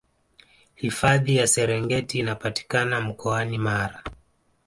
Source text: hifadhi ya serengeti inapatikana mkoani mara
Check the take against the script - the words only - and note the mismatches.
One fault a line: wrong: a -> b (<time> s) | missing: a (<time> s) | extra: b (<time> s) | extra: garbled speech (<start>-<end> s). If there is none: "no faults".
no faults